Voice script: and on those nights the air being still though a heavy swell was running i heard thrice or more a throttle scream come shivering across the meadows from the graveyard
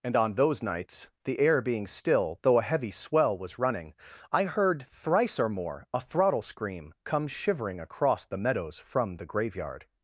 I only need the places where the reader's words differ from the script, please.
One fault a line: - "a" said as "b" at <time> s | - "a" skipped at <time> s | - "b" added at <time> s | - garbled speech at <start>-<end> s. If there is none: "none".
none